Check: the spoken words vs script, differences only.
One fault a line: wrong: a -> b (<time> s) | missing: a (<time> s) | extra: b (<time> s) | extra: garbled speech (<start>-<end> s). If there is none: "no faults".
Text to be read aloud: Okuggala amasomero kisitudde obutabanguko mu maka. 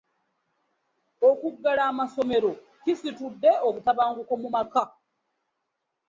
no faults